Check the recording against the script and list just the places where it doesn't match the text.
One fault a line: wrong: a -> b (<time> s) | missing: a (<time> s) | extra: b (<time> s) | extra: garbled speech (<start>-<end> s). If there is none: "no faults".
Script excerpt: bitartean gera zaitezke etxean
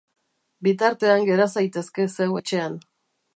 extra: zeu (2.1 s)